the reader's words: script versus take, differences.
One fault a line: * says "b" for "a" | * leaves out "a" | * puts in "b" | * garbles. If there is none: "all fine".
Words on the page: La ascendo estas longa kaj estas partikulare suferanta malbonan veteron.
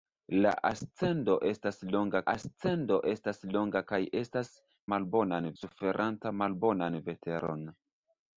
* puts in "ascendo estas longa"
* says "malbonan" for "partikulare"